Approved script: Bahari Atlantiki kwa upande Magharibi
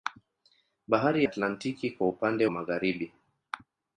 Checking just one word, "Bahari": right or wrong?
right